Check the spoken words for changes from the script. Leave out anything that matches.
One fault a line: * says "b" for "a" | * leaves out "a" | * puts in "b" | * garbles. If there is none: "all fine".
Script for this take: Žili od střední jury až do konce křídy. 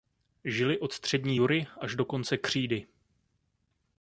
all fine